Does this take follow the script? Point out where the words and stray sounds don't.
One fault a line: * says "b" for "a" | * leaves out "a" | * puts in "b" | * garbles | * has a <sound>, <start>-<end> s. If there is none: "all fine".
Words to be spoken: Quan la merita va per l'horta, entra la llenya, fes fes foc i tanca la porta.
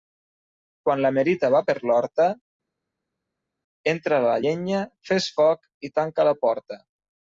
* leaves out "fes"